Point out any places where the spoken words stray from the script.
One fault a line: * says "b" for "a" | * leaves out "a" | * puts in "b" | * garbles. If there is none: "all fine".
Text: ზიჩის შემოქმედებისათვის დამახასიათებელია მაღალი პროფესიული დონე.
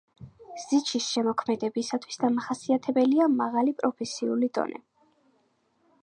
all fine